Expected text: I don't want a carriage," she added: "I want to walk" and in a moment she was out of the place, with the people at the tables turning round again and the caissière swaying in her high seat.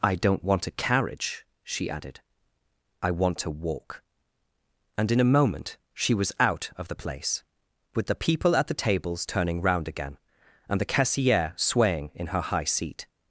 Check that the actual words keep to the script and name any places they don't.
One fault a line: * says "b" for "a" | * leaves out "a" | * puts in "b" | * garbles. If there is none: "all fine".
all fine